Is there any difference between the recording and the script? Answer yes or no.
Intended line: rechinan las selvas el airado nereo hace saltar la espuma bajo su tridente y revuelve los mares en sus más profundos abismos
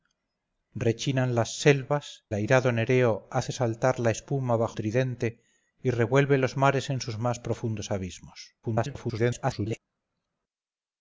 yes